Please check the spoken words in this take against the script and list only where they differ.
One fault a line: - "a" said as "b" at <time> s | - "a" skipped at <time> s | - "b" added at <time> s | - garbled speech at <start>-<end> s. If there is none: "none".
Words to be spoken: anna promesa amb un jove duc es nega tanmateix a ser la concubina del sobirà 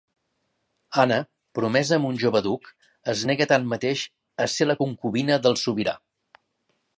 none